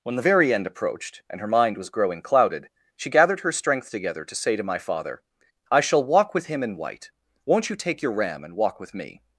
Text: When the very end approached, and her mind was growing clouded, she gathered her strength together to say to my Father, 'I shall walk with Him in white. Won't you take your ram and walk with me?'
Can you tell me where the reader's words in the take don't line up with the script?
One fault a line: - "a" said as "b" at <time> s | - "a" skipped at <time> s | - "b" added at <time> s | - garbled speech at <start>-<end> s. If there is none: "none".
none